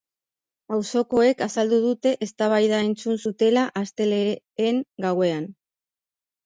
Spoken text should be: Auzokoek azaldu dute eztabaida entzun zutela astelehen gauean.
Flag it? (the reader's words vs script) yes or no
no